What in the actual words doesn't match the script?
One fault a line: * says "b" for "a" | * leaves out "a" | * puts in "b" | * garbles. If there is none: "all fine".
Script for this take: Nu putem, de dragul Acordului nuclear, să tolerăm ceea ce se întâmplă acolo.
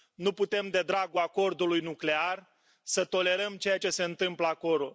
all fine